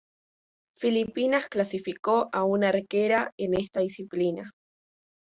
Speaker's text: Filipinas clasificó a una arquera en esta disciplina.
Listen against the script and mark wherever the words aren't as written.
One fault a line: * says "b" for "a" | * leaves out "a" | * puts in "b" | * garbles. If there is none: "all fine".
all fine